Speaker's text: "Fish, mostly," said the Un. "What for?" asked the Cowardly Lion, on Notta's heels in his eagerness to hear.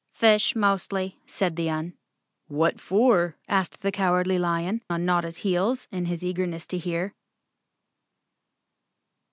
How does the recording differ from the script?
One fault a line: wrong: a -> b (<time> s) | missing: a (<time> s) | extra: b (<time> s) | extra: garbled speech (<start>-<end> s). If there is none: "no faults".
no faults